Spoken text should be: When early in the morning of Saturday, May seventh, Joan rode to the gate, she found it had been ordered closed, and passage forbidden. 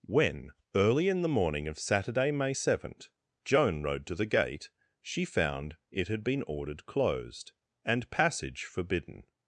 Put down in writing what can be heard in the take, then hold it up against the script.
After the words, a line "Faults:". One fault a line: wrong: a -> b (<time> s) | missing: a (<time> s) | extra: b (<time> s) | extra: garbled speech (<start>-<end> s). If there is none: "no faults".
When early in the morning of Saturday, May seventh, Joan rode to the gate, she found it had been ordered closed, and passage forbidden.
Faults:
no faults